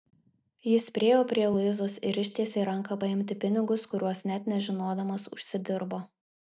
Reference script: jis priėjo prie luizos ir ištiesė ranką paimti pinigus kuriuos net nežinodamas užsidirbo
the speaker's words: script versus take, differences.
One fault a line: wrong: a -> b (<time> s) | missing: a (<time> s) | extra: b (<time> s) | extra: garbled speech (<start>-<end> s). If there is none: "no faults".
no faults